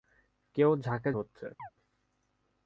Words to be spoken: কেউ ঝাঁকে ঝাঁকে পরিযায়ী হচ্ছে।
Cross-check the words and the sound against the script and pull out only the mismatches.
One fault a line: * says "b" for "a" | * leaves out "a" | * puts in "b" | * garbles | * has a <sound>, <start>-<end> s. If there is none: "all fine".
* leaves out "ঝাঁকে পরিযায়ী"
* has a chirp, 1.6-1.7 s